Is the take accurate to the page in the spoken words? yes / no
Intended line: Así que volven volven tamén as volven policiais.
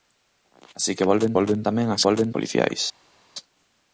yes